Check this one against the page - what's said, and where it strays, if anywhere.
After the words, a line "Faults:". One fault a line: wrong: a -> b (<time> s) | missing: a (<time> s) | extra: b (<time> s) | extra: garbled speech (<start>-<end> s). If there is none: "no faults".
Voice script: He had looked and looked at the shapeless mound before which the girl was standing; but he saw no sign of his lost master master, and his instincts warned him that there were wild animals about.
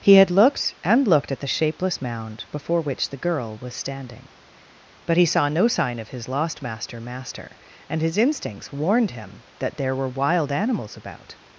He had looked and looked at the shapeless mound before which the girl was standing; but he saw no sign of his lost master master, and his instincts warned him that there were wild animals about.
Faults:
no faults